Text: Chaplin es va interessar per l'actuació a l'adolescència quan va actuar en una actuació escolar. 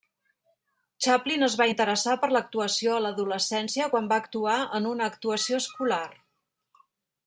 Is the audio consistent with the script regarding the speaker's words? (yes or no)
yes